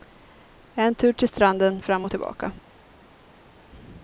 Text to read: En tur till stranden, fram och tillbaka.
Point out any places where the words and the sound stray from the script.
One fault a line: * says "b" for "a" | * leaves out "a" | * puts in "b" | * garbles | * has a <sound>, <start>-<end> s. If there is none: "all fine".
all fine